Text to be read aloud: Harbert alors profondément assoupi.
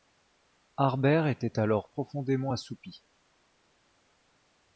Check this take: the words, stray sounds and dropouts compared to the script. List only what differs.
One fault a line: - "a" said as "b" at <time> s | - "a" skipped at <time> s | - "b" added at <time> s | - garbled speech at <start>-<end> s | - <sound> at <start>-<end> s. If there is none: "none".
- "était" added at 1.3 s